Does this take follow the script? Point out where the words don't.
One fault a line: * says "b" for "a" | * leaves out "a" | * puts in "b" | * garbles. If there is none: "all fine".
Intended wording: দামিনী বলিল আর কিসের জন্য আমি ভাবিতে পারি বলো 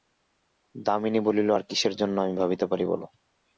all fine